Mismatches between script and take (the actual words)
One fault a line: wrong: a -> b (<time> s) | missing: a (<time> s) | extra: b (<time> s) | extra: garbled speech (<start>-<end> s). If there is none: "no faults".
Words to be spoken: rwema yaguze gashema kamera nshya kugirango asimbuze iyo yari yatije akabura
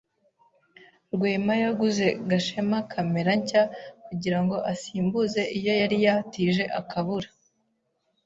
no faults